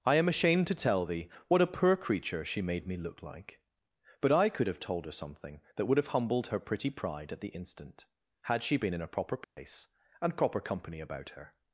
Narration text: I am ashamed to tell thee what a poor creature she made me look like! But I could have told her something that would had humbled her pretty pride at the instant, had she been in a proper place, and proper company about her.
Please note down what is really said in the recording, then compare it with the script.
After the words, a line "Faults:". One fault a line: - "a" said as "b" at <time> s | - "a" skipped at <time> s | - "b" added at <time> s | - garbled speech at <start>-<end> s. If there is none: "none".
I am ashamed to tell thee what a poor creature she made me look like! But I could have told her something that would have humbled her pretty pride at the instant, had she been in a proper place, and proper company about her.
Faults:
- "had" said as "have" at 6.0 s